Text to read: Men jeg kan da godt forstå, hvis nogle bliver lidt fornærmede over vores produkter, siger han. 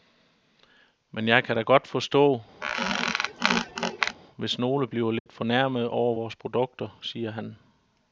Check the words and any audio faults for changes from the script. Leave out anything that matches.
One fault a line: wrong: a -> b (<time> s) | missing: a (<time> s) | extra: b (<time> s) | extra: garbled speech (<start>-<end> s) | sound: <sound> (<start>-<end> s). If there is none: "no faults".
sound: squeak (2.6-4.2 s)
sound: dropout (5.2-5.3 s)